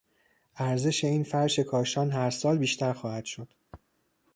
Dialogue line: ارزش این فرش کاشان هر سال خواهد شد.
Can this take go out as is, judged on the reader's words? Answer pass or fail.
fail